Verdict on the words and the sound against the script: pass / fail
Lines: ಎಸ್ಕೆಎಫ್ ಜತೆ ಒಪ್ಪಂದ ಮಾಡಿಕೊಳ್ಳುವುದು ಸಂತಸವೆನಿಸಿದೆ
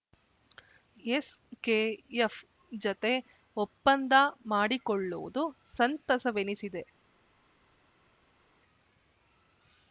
pass